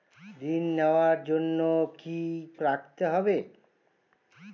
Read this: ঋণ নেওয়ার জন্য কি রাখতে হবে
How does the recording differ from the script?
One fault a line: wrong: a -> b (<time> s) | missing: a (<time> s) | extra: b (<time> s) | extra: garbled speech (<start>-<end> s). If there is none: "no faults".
no faults